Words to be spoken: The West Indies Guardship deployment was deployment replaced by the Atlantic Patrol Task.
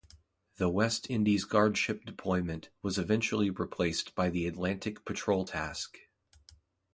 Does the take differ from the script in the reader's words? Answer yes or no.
yes